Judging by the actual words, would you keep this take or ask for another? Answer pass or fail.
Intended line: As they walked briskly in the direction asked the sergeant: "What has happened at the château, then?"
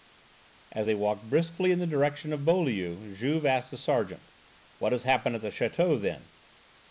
fail